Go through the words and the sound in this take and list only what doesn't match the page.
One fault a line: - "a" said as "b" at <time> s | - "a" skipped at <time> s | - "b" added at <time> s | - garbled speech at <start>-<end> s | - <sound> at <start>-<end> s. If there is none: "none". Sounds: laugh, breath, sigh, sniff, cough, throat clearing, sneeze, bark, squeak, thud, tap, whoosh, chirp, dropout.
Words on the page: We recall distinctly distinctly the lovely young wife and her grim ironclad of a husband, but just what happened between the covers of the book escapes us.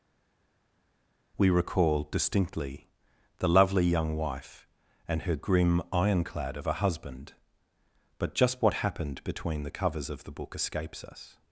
- "distinctly" skipped at 2.9 s